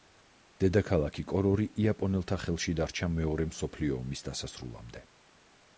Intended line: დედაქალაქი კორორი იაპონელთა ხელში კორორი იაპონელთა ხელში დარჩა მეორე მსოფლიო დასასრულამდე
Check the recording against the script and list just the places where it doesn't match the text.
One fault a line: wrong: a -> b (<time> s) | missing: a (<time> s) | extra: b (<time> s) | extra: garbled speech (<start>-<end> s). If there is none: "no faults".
missing: კორორი იაპონელთა ხელში (2.8 s)
extra: ომის (4.0 s)